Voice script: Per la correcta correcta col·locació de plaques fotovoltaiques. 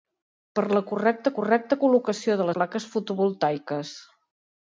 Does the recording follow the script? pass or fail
pass